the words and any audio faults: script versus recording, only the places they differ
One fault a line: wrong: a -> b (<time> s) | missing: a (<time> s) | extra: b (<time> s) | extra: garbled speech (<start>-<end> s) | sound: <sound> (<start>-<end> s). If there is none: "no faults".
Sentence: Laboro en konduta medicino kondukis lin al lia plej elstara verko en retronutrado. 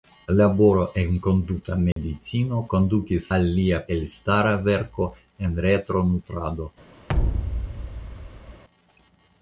sound: dropout (1.9-2.0 s)
missing: lin (3.3 s)
missing: plej (3.8 s)
sound: thud (7.1-8.6 s)